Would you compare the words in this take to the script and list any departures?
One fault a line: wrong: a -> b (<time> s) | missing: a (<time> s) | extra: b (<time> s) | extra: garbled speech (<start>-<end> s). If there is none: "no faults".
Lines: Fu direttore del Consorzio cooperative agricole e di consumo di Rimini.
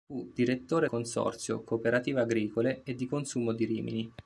missing: del (0.9 s)